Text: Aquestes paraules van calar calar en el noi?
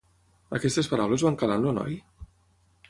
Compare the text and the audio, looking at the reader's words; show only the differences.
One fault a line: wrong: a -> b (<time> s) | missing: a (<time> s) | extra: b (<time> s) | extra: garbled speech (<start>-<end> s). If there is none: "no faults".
missing: calar (1.6 s)